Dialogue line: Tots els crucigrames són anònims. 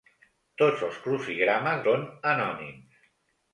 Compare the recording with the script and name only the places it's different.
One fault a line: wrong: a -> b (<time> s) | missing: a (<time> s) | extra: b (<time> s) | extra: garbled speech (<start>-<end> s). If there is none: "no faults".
no faults